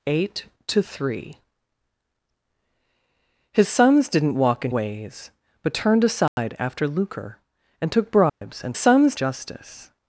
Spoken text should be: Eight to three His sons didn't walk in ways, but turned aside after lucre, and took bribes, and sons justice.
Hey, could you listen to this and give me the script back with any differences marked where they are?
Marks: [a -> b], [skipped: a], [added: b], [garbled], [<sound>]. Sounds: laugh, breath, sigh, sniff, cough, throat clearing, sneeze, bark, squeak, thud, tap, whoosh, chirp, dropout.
Eight to three His sons didn't walk in ways, but turned aside [dropout] after lucre, and took bribes, [dropout] and sons justice.